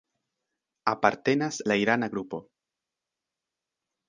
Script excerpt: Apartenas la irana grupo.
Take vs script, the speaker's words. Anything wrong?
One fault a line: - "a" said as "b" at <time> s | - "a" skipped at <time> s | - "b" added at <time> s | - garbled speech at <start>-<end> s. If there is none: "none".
none